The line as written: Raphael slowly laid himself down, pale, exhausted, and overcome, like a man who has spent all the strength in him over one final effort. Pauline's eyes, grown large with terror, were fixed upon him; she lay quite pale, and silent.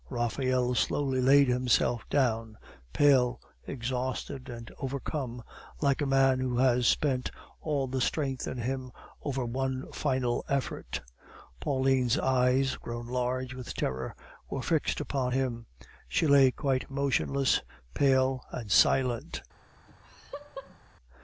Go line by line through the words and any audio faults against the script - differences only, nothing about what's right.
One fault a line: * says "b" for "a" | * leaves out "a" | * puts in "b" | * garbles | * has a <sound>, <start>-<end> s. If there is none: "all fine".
* puts in "motionless"
* has a laugh, 19.9-20.8 s